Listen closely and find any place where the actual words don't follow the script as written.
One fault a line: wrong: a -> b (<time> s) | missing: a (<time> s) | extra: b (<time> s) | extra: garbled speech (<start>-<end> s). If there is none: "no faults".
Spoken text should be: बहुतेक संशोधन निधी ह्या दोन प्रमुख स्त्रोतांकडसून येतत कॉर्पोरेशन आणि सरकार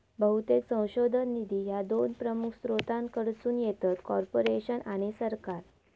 no faults